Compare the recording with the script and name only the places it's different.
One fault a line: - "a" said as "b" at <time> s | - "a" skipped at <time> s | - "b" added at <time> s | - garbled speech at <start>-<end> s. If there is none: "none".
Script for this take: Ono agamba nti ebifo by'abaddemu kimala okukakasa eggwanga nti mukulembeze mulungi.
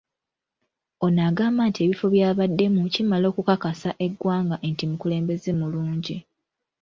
none